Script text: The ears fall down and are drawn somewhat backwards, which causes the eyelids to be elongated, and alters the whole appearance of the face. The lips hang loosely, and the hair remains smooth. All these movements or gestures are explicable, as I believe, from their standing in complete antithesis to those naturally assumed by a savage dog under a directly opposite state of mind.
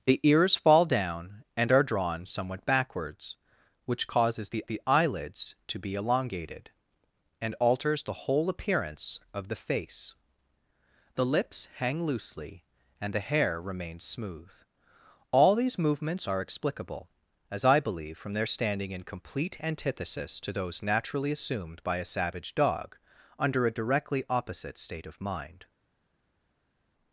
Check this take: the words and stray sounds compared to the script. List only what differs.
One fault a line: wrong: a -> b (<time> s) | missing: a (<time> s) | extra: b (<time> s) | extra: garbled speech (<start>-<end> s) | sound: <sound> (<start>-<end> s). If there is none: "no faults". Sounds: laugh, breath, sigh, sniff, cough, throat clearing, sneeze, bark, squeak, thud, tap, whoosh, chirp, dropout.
extra: the (4.7 s)
missing: or gestures (16.3 s)